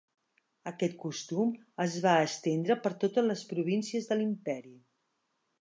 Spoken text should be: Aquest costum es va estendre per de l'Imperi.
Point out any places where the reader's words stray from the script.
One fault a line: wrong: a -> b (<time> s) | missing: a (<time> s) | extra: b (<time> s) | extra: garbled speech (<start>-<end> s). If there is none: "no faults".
extra: totes les províncies (3.0 s)